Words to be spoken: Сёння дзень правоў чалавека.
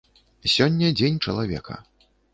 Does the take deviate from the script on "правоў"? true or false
true